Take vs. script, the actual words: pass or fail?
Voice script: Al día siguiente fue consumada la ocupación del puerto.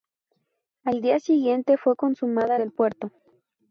fail